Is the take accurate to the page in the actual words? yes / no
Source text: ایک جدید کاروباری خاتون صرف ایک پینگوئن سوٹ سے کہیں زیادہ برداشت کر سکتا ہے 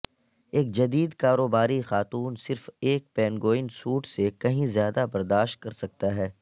yes